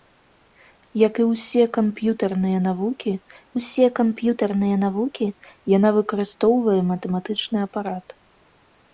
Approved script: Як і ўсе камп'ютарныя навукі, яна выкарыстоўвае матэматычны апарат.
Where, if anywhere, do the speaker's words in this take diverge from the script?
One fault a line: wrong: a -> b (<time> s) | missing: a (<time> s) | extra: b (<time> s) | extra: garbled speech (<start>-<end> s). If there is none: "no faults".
extra: ўсе камп'ютарныя навукі (3.6 s)